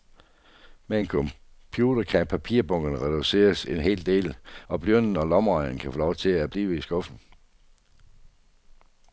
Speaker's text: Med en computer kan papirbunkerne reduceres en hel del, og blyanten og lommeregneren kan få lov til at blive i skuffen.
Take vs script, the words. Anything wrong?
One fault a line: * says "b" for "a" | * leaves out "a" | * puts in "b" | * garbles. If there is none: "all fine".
all fine